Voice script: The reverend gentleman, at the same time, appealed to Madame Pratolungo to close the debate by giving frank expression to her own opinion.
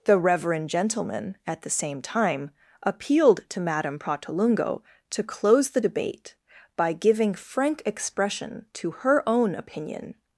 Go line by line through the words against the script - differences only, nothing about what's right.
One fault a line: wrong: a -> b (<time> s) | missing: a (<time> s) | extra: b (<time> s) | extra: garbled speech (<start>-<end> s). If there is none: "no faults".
no faults